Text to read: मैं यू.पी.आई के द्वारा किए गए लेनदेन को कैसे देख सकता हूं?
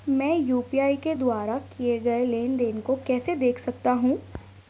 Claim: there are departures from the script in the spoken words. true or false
false